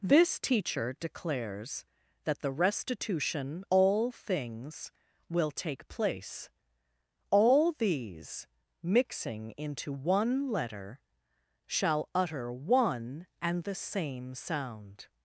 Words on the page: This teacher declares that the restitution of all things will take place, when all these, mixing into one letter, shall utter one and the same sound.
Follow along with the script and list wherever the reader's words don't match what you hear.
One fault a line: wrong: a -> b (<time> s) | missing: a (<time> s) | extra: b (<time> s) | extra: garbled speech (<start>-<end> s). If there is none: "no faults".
missing: of (3.6 s)
missing: when (6.5 s)